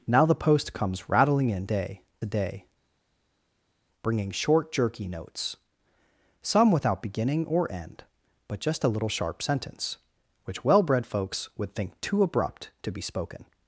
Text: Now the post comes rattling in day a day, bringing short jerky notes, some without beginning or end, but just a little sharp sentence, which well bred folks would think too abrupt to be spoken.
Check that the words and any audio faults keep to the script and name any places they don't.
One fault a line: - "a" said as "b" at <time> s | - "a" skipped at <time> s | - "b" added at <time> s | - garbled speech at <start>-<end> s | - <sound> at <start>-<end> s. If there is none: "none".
none